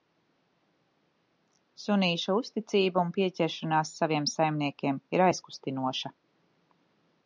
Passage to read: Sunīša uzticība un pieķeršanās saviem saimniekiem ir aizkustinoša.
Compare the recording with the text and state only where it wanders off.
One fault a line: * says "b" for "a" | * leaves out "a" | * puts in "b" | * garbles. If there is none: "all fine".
all fine